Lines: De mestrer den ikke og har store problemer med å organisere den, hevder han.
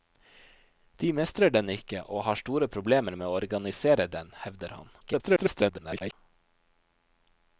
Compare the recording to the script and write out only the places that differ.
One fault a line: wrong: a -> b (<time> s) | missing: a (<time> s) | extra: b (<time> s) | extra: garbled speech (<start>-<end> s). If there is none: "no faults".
extra: garbled speech (5.0-6.1 s)